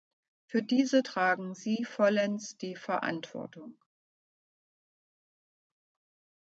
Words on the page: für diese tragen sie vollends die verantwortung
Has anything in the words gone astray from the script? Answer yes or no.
no